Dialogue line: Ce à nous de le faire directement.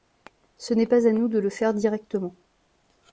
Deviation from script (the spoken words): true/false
true